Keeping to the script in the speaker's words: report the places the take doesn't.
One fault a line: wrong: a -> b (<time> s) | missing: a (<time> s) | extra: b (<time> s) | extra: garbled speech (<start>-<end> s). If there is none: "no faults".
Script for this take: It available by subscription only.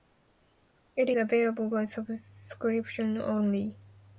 no faults